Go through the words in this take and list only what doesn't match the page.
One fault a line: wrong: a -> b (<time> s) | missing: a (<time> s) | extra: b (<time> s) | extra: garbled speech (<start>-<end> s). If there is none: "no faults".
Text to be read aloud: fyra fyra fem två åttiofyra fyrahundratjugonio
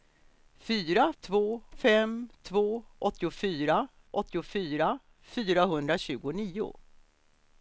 wrong: fyra -> två (1.2 s)
extra: åttiofyra (4.1 s)